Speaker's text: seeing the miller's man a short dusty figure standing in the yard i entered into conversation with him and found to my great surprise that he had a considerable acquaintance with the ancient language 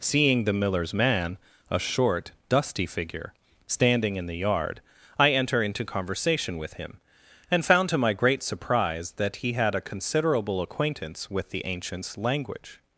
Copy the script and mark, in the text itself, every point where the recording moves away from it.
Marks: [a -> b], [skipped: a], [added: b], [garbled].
seeing the miller's man a short dusty figure standing in the yard i [entered -> enter] into conversation with him and found to my great surprise that he had a considerable acquaintance with the [ancient -> ancients] language